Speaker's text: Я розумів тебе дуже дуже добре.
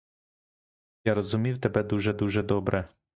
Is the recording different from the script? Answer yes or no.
no